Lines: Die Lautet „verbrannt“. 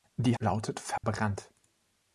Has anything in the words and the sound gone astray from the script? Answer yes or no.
yes